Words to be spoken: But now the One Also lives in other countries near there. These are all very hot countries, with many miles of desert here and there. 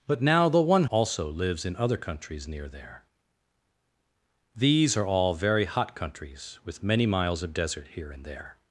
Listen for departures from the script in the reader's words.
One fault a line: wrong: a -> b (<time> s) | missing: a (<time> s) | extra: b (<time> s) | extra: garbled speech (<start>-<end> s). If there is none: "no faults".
no faults